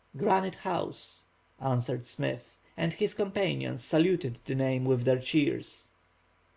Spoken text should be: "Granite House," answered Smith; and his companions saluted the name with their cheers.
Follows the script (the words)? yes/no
yes